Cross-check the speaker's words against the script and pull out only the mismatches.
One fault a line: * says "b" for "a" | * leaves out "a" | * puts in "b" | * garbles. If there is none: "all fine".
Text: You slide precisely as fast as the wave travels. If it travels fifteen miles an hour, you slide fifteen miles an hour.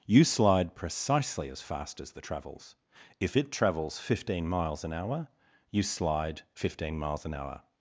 * leaves out "wave"